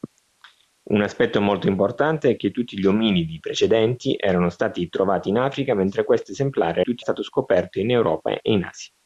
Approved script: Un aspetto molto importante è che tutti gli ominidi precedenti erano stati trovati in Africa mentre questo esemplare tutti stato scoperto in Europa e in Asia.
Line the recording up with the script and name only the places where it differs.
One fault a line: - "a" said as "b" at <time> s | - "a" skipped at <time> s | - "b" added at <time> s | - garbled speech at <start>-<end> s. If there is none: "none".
none